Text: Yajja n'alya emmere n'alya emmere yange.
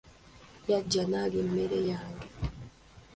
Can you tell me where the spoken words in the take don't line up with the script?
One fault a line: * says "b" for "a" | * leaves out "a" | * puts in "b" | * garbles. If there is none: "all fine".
* leaves out "n'alya emmere"